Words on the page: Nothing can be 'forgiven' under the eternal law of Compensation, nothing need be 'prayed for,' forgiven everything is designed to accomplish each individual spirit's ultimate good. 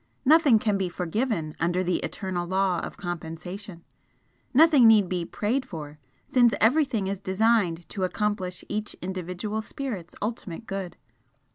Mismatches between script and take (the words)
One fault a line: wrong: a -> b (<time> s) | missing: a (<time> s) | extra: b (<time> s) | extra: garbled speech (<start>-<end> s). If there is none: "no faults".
wrong: forgiven -> since (6.3 s)